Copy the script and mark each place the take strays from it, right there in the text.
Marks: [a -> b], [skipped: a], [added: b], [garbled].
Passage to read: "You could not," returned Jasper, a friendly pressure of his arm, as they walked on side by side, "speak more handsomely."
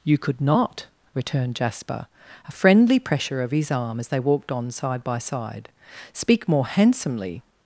"You could not," returned Jasper, a friendly pressure of his arm, as they walked on side by side, "speak more handsomely."